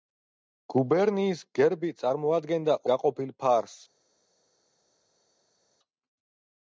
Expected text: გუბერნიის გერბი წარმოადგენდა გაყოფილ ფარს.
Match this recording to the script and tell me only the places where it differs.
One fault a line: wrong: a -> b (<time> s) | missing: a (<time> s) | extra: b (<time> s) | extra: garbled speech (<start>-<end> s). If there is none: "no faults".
no faults